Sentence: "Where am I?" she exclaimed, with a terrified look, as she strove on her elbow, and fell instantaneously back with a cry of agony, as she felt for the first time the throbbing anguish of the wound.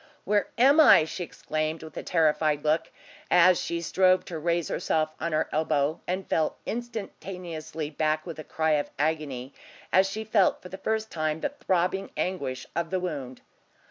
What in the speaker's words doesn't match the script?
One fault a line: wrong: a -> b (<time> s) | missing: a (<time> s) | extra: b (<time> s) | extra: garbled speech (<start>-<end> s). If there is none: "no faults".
extra: to raise herself (4.3 s)